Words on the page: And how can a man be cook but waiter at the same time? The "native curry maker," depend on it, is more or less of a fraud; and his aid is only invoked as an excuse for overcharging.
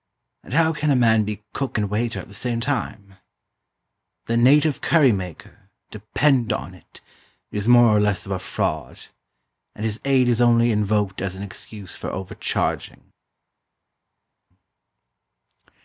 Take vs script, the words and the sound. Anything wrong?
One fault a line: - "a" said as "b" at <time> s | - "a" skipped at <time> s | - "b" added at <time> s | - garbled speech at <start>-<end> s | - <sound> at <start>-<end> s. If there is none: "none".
- "but" said as "and" at 1.8 s